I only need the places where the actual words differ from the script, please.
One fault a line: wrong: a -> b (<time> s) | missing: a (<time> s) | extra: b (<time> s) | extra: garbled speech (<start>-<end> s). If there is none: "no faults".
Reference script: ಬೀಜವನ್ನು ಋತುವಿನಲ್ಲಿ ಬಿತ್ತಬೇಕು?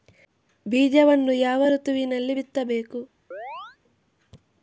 extra: ಯಾವ (1.4 s)